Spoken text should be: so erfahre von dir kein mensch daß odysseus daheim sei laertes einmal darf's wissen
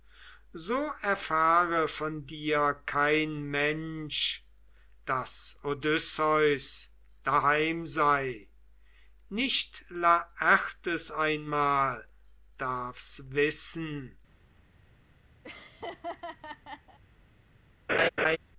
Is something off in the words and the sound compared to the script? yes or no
yes